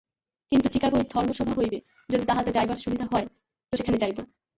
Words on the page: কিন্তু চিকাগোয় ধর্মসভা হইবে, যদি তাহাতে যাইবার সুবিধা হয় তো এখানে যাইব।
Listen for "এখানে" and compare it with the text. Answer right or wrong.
wrong